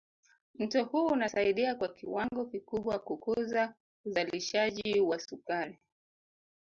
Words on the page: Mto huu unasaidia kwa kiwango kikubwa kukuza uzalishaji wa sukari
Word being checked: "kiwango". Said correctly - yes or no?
yes